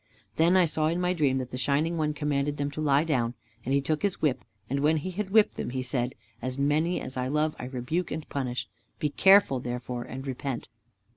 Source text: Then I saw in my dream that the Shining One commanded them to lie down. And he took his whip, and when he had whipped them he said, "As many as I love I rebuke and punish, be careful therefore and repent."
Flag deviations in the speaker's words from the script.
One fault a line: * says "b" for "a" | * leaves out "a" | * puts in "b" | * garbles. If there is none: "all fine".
all fine